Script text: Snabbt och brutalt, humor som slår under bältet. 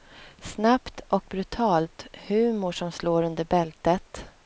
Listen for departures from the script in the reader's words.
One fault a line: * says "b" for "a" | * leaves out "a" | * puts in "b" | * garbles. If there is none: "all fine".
all fine